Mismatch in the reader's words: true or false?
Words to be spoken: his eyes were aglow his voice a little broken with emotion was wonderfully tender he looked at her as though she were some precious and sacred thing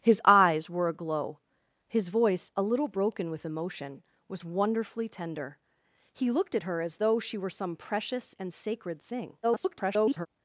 true